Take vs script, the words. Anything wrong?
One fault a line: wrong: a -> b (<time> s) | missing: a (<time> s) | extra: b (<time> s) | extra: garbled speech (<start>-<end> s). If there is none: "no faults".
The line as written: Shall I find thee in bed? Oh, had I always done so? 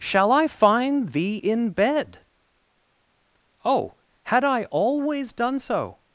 no faults